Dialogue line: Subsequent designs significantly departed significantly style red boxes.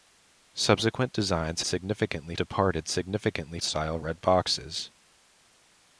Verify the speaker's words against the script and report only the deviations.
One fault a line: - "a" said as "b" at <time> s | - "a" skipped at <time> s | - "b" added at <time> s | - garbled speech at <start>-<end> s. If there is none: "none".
none